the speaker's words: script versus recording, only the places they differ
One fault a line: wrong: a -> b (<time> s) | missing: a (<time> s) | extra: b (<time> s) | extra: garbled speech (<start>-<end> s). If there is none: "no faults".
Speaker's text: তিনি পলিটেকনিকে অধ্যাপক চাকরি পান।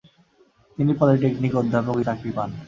no faults